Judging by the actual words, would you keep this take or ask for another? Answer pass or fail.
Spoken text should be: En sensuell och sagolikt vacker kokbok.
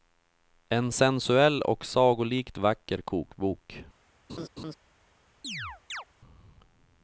pass